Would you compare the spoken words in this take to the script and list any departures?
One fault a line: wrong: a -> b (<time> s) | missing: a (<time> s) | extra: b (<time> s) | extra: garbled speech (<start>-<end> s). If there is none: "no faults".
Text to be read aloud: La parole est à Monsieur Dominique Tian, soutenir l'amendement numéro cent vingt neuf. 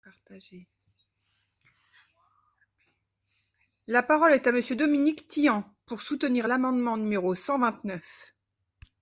extra: pour (5.8 s)